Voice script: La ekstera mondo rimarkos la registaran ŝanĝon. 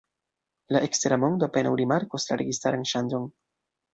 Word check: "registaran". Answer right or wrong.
right